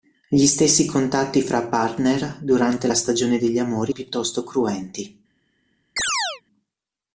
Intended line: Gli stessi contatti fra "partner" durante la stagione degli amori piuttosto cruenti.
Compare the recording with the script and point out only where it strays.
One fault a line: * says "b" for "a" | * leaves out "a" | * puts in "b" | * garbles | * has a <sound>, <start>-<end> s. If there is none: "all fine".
* has a chirp, 6.0-6.4 s